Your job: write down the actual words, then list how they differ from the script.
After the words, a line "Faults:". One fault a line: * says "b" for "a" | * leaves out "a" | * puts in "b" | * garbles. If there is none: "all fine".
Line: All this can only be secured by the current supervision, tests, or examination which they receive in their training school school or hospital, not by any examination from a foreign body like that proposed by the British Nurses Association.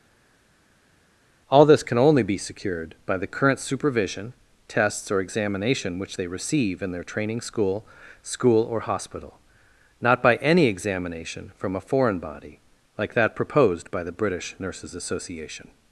All this can only be secured by the current supervision, tests, or examination which they receive in their training school school or hospital, not by any examination from a foreign body like that proposed by the British Nurses Association.
Faults:
all fine